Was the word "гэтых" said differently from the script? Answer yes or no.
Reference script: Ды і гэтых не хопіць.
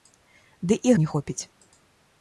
yes